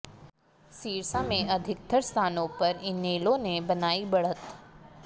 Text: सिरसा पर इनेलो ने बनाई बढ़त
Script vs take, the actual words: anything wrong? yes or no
yes